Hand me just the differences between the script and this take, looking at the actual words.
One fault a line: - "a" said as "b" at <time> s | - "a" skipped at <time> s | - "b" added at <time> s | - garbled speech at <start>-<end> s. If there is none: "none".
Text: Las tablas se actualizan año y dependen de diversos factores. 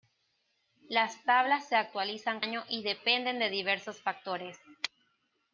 none